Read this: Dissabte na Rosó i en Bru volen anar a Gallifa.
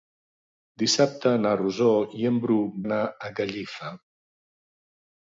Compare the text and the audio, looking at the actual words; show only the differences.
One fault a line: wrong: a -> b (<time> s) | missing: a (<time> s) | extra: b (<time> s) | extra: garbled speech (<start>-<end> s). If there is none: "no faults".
missing: volen (2.6 s)